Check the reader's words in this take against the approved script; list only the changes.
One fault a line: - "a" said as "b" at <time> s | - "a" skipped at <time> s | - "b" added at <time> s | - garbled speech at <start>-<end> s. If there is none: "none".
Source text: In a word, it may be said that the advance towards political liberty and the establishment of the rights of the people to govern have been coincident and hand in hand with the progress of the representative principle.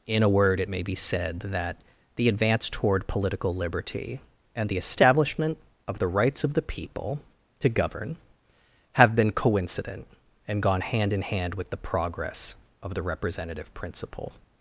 - "towards" said as "toward" at 2.7 s
- "gone" added at 10.6 s